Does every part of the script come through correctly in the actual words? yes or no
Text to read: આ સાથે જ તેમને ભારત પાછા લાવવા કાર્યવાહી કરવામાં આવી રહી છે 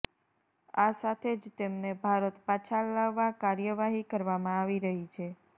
yes